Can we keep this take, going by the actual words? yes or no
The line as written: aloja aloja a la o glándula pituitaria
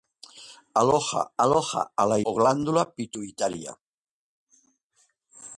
yes